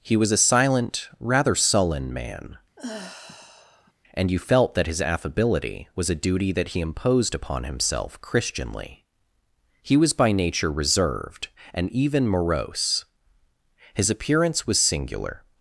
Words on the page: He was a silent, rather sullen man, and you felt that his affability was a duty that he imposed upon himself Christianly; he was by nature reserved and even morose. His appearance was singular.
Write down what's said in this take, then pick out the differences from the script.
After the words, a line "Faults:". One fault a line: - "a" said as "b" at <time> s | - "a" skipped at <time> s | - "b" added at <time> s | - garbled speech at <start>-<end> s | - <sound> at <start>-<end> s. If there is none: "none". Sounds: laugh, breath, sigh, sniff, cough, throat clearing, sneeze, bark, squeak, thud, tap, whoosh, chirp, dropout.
He was a silent, rather sullen man, and you felt that his affability was a duty that he imposed upon himself Christianly; he was by nature reserved and even morose. His appearance was singular.
Faults:
- sigh at 2.8-3.9 s